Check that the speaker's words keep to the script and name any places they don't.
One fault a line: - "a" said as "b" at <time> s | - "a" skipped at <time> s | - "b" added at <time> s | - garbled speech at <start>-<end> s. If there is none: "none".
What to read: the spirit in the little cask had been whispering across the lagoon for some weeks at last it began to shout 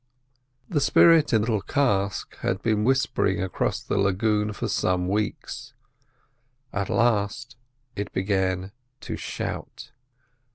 - "the" skipped at 1.4 s